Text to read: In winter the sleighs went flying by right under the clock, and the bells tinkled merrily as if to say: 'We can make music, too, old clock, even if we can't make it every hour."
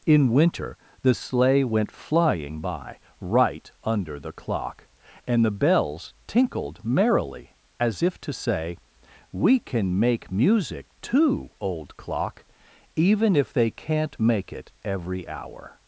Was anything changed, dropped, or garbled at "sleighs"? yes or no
yes